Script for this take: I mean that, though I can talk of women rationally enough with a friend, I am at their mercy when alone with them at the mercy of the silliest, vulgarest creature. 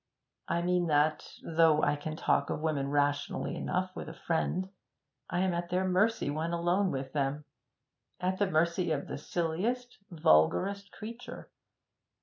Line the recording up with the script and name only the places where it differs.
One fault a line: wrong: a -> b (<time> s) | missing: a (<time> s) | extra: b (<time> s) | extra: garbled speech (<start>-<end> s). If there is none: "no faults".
no faults